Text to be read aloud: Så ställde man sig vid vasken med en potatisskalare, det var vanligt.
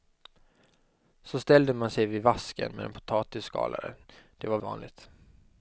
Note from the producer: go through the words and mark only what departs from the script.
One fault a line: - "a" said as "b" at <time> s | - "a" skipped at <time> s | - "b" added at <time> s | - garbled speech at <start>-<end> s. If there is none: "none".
none